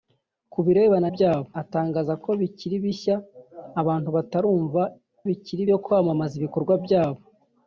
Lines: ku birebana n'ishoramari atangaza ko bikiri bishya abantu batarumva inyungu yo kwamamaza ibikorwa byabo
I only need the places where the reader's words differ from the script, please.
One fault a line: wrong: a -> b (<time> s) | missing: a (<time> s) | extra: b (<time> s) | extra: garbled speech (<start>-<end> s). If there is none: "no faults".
wrong: n'ishoramari -> byabo (1.1 s)
wrong: inyungu -> bikiri (5.3 s)